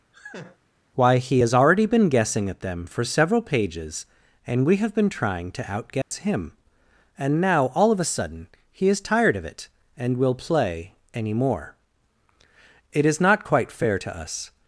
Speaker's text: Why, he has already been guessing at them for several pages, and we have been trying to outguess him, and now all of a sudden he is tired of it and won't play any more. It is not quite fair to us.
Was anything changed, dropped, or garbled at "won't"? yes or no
yes